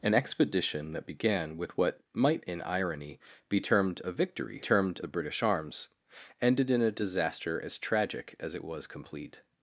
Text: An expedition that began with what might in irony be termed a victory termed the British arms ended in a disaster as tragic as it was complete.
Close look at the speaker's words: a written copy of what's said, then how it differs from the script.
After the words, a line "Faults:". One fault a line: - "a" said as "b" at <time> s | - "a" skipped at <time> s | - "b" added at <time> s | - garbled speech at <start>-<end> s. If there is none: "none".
An expedition that began with what might in irony be termed a victory termed the British arms ended in a disaster as tragic as it was complete.
Faults:
none